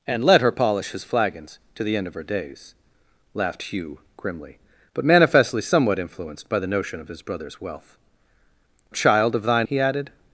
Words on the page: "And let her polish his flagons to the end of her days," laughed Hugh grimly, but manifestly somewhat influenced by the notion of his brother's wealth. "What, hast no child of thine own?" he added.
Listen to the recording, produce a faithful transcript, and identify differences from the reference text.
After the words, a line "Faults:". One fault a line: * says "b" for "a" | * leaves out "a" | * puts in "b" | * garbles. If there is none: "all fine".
"And let her polish his flagons to the end of her days," laughed Hugh grimly, but manifestly somewhat influenced by the notion of his brother's wealth. "Child of thine?" he added.
Faults:
* leaves out "What hast no"
* leaves out "own"